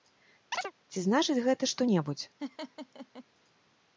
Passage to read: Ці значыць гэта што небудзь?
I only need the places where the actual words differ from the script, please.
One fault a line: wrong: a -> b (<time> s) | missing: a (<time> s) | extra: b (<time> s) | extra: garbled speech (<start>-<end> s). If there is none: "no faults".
no faults